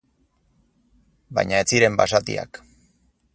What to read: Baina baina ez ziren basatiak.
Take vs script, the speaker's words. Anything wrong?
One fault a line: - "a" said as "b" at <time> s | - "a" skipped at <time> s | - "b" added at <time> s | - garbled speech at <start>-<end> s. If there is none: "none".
- "baina" skipped at 1.6 s